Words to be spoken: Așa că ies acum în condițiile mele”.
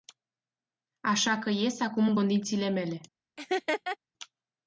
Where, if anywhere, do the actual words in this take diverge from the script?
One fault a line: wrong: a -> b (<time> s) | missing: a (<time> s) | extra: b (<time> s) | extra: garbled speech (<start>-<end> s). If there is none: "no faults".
no faults